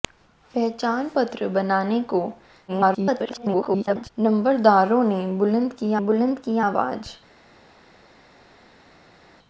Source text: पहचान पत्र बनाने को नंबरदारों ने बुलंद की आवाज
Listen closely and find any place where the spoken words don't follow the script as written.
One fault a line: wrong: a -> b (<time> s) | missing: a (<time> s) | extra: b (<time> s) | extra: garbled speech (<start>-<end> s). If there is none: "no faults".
extra: garbled speech (2.7-4.1 s)
extra: बुलंद की (6.1 s)